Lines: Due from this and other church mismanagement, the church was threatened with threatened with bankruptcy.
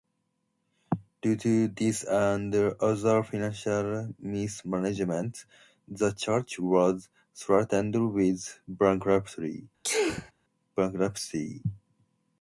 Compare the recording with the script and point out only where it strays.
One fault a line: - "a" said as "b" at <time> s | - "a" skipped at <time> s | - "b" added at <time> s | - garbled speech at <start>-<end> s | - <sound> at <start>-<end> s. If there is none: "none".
- "from" said as "to" at 1.4 s
- "church" said as "financial" at 3.2 s
- "threatened with" skipped at 8.6 s
- sneeze at 9.8-10.3 s